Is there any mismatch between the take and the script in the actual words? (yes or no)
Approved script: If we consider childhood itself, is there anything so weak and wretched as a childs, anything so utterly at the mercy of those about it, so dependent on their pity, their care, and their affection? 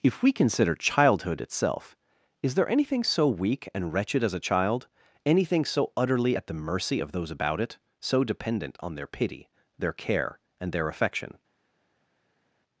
yes